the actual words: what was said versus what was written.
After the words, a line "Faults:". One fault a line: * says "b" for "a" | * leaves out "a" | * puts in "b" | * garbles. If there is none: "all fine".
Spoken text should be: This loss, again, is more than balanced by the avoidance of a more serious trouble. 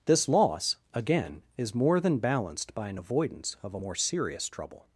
This loss, again, is more than balanced by an avoidance of a more serious trouble.
Faults:
* says "an" for "the"